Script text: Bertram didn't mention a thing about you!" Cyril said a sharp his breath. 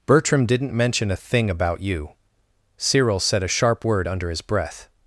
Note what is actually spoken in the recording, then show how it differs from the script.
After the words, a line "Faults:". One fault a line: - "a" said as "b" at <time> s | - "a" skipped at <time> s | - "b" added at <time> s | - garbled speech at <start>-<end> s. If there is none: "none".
Bertram didn't mention a thing about you!" Cyril said a sharp word under his breath.
Faults:
- "word under" added at 3.8 s